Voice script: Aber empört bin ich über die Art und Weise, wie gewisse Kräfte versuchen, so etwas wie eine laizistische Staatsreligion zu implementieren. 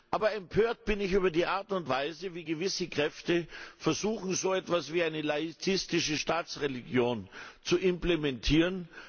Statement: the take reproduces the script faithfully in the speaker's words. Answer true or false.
true